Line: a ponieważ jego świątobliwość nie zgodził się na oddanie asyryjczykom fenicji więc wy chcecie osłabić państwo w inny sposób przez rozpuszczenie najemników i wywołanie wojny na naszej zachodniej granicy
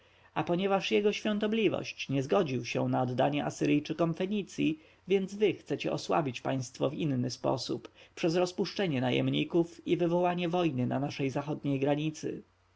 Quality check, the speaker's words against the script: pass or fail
pass